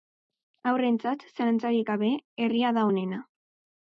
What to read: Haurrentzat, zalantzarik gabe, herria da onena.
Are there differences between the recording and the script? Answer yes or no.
no